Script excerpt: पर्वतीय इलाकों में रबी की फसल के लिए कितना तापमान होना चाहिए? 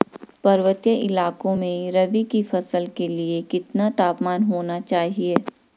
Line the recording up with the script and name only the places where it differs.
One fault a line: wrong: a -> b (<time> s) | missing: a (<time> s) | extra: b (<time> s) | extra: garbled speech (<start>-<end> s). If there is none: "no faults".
no faults